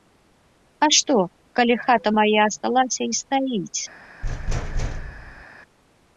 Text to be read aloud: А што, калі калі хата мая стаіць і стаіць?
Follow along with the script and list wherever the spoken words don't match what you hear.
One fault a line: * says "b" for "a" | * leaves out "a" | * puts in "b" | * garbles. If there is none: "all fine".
* leaves out "калі"
* says "асталася" for "стаіць"